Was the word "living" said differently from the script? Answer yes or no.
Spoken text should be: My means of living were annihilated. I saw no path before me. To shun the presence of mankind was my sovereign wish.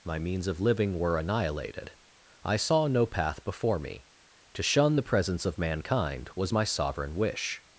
no